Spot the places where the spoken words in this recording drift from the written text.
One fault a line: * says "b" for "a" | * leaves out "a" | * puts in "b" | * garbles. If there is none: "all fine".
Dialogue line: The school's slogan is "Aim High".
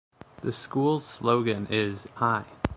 * leaves out "Aim"